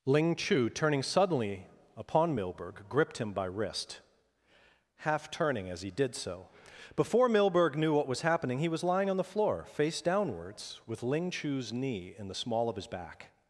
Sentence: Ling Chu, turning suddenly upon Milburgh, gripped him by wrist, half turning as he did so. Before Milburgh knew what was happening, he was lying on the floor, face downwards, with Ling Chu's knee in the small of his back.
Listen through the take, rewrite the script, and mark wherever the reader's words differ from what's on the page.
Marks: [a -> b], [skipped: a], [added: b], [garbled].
Ling Chu, turning suddenly upon Milburgh, gripped him by wrist, half turning as he did so. Before Milburgh knew what was happening, he was lying on the floor, face downwards, with Ling Chu's knee in the small of his back.